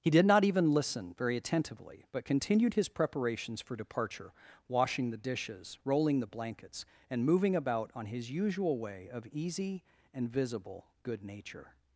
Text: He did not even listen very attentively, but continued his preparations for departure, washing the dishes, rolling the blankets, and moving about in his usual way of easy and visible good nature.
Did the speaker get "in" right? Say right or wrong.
wrong